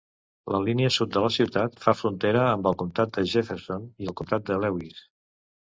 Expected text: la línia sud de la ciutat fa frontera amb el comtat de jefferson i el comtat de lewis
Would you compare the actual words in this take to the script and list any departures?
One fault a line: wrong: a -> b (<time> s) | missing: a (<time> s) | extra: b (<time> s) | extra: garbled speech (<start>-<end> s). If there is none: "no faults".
no faults